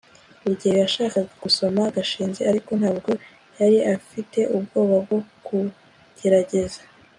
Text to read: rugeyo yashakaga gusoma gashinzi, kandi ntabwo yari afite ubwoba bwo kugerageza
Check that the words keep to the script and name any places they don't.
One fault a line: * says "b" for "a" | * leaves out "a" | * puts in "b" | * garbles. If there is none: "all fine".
* says "ariko" for "kandi"